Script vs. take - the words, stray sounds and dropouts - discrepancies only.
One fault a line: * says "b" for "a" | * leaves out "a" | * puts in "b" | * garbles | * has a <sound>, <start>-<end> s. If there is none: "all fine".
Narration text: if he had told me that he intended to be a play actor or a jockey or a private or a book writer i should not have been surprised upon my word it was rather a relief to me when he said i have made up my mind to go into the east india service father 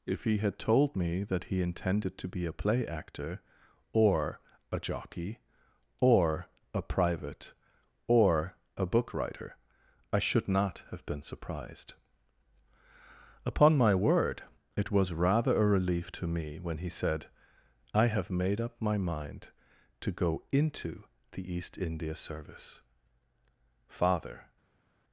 all fine